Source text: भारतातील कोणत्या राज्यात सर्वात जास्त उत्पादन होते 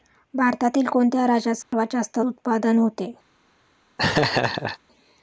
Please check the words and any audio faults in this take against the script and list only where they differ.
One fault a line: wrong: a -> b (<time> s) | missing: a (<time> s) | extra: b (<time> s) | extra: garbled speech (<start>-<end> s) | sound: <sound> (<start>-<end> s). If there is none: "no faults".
sound: dropout (1.6-1.7 s)
sound: laugh (4.0-4.8 s)